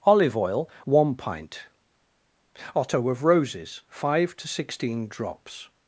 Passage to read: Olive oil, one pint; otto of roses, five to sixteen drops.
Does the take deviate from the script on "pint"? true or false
false